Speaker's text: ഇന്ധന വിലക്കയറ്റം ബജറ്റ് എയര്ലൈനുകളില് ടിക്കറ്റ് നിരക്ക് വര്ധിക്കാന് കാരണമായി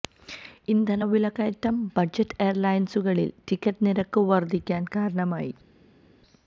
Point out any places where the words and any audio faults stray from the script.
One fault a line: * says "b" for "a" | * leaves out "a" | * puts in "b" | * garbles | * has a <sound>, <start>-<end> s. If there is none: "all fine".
all fine